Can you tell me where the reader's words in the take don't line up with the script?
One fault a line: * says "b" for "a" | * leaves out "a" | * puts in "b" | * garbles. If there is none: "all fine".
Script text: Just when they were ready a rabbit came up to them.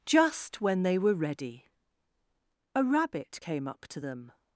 all fine